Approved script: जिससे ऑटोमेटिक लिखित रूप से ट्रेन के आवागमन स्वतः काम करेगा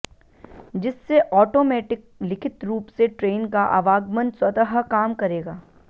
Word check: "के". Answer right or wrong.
wrong